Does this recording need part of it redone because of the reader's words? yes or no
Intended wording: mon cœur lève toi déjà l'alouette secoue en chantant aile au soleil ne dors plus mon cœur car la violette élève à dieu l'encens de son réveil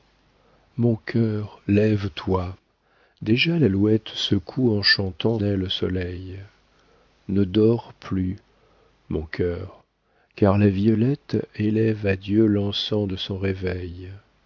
no